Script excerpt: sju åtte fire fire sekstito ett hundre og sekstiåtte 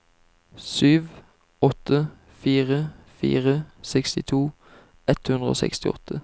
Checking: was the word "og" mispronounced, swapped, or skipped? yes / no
no